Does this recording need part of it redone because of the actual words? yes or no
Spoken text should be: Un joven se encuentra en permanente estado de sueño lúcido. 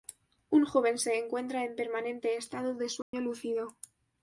no